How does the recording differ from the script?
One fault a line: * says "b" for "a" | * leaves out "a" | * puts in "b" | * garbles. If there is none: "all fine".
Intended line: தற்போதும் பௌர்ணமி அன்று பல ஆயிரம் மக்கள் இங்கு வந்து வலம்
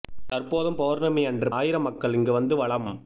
* leaves out "பல"